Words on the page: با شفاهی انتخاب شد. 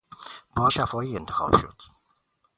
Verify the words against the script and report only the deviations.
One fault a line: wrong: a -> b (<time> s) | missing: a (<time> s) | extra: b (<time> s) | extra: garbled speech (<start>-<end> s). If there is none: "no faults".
no faults